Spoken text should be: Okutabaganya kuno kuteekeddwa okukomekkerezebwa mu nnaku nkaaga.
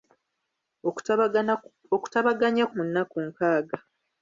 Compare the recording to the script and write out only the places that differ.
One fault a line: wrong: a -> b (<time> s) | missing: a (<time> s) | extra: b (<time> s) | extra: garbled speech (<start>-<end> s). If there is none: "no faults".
missing: kuno kuteekeddwa okukomekkerezebwa (2.6 s)